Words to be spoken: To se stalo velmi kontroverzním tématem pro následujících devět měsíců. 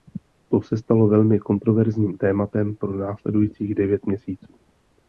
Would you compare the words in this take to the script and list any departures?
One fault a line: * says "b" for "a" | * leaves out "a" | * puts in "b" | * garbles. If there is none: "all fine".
all fine